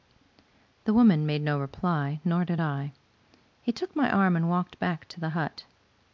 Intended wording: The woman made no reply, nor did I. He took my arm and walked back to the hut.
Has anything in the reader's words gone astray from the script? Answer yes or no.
no